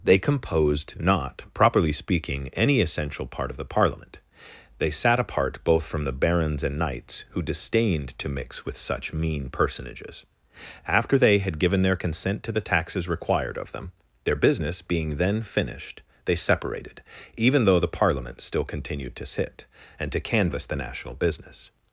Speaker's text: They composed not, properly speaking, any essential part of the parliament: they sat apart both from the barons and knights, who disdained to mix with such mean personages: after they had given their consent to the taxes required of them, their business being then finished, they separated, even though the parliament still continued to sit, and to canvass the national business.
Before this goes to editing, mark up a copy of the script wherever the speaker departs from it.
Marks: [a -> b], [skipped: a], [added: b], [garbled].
They composed not, properly speaking, any essential part of the parliament: they sat apart both from the barons and knights, who disdained to mix with such mean personages: after they had given their consent to the taxes required of them, their business being then finished, they separated, even though the parliament still continued to sit, and to canvass the national business.